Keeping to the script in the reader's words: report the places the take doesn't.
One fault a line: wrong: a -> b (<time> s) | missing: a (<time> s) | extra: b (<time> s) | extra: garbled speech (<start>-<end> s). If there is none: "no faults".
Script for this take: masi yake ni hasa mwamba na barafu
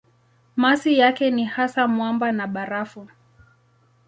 no faults